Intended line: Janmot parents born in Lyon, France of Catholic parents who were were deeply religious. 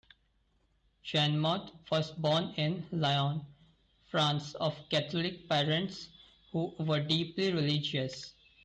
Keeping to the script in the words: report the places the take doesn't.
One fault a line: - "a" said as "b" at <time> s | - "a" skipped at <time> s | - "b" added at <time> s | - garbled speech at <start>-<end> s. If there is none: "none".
- "parents" said as "was" at 1.9 s
- "were" skipped at 7.0 s